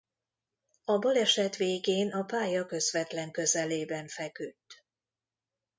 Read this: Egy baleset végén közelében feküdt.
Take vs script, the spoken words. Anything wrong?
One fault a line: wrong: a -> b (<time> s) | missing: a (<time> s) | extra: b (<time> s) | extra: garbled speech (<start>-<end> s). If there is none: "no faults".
wrong: Egy -> A (0.8 s)
extra: a pálya közvetlen (2.1 s)